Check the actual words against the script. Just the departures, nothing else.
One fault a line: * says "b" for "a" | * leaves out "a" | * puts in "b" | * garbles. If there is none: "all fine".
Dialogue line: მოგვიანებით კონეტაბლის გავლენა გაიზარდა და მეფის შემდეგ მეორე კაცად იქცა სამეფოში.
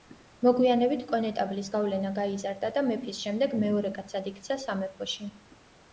all fine